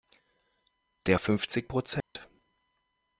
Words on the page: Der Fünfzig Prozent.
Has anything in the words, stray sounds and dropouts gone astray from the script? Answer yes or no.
yes